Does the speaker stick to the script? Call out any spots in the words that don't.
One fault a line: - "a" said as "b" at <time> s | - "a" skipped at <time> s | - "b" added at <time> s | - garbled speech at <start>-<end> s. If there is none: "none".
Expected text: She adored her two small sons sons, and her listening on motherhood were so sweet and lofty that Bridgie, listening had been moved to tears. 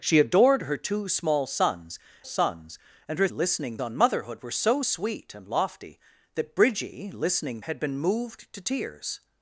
none